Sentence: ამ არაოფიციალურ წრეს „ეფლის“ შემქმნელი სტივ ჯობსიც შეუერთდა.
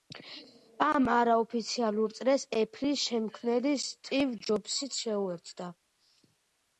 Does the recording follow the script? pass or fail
pass